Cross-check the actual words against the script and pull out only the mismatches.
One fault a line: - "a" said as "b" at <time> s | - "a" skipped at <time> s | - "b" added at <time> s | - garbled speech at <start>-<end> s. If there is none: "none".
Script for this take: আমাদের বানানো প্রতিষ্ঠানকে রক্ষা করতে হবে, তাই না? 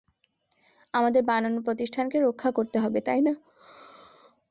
none